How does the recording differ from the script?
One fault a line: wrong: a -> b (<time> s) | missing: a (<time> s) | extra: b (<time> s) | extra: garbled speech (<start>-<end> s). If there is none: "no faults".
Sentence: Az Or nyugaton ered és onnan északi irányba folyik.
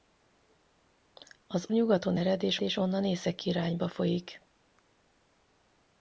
missing: Or (1.6 s)
extra: és (2.6 s)